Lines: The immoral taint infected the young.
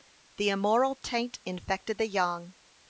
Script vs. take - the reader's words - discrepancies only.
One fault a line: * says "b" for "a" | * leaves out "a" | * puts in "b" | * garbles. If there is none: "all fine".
all fine